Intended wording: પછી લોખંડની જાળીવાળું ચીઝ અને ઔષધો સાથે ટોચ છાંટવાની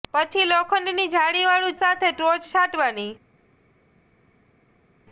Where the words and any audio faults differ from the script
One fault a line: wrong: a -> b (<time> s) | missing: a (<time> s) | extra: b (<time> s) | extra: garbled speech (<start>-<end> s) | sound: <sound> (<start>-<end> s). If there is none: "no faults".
missing: ચીઝ અને ઔષધો (1.8 s)